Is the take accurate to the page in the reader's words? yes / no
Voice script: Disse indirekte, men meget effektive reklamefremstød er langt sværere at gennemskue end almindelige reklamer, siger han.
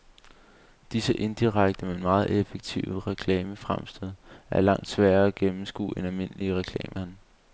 no